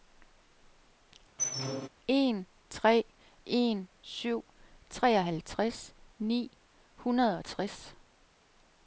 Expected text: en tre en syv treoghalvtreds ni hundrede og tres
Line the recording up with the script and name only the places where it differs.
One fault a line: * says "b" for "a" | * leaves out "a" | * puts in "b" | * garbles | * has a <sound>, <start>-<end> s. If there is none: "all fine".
* has a squeak, 1.4-1.9 s